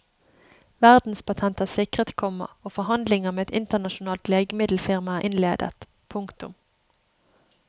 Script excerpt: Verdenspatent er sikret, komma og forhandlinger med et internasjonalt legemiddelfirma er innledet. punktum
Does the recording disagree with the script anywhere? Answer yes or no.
no